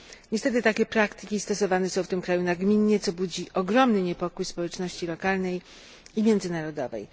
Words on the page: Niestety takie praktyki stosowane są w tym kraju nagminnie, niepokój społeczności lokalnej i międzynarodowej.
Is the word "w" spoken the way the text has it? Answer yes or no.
yes